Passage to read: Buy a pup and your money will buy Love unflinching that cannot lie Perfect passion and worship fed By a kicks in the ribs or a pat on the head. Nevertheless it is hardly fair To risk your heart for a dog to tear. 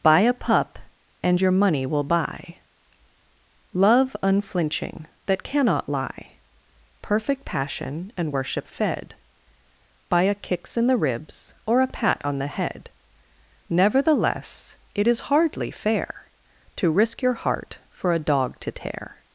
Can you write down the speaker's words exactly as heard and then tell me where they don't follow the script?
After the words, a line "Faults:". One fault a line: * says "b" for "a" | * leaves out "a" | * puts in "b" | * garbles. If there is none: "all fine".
Buy a pup and your money will buy Love unflinching that cannot lie Perfect passion and worship fed By a kicks in the ribs or a pat on the head. Nevertheless it is hardly fair To risk your heart for a dog to tear.
Faults:
all fine